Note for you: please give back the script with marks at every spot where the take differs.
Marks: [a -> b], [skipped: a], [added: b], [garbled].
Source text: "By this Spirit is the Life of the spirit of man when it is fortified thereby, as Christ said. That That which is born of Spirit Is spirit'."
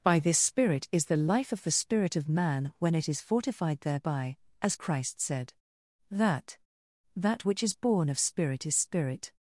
"By this Spirit is the Life of the spirit of man when it is fortified thereby, as Christ said. That That which is born of Spirit Is spirit'."